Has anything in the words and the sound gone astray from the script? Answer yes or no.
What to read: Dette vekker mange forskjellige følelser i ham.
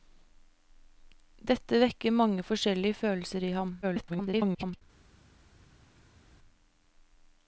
yes